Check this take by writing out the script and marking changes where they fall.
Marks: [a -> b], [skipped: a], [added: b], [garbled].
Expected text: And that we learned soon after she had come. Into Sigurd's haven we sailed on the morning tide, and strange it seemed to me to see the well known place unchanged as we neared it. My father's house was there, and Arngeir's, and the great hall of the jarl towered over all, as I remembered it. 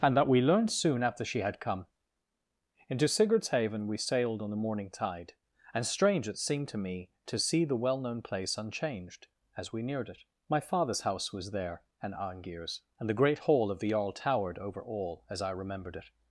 And that we learned soon after she had come. Into Sigurd's haven we sailed on the morning tide, and strange it seemed to me to see the well known place unchanged as we neared it. My father's house was there, and Arngeir's, and the great hall of the jarl towered over all, as I remembered it.